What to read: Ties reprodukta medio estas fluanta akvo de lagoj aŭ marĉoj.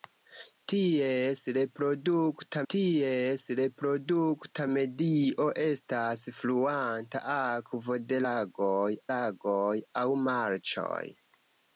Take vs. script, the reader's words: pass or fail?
fail